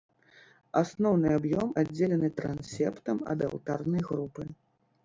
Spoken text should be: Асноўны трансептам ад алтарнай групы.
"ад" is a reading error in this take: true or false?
false